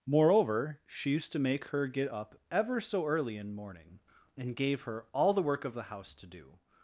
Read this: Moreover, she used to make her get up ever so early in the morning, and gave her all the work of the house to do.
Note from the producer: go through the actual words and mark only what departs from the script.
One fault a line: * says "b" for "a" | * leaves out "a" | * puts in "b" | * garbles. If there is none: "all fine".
* leaves out "the"